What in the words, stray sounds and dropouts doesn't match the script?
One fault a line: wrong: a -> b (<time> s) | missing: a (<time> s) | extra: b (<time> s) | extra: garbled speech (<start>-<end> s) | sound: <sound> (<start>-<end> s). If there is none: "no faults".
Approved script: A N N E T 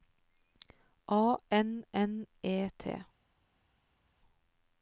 no faults